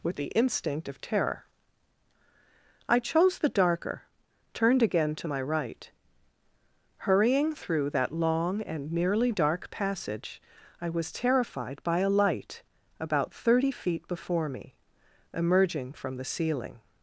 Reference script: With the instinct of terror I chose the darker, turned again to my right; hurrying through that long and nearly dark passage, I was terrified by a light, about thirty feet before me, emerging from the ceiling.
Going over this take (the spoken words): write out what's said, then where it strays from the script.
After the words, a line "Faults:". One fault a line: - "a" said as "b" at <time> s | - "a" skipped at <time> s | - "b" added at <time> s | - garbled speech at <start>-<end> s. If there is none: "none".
With the instinct of terror I chose the darker, turned again to my right; hurrying through that long and nearly dark passage, I was terrified by a light, about thirty feet before me, emerging from the ceiling.
Faults:
none